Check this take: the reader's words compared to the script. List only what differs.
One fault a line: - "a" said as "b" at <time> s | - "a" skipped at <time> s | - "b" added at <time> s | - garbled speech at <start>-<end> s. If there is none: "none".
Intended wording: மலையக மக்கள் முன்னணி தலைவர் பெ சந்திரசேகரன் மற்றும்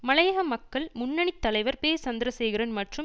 none